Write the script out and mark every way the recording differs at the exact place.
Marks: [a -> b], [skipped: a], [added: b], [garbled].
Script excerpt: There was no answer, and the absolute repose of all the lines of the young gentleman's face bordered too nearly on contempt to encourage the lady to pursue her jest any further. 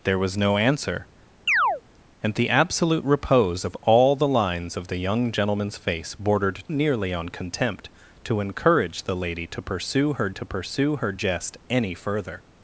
There was no answer, and the absolute repose of all the lines of the young gentleman's face bordered [skipped: too] nearly on contempt to encourage the lady to pursue her [added: to pursue her] jest any further.